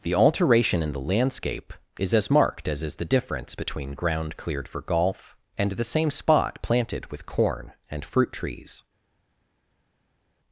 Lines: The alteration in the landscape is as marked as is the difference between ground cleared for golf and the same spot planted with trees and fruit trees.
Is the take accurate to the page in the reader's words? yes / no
no